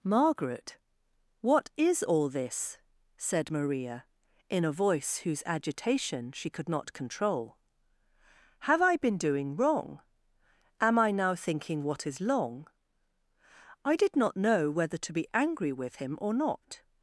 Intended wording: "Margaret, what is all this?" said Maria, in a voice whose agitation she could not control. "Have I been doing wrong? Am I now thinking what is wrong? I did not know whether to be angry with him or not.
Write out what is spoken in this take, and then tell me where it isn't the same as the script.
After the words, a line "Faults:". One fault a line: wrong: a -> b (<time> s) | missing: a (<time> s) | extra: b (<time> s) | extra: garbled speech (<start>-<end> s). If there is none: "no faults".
"Margaret, what is all this?" said Maria, in a voice whose agitation she could not control. "Have I been doing wrong? Am I now thinking what is long? I did not know whether to be angry with him or not.
Faults:
wrong: wrong -> long (12.2 s)